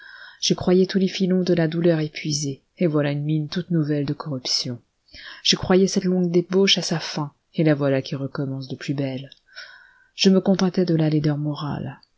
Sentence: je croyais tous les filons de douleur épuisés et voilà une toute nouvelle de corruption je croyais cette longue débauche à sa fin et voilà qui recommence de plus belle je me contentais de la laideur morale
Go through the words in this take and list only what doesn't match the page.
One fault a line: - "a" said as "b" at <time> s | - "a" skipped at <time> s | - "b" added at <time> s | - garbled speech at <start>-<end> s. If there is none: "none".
- "la" added at 1.5 s
- "mine" added at 3.2 s
- "la" added at 7.6 s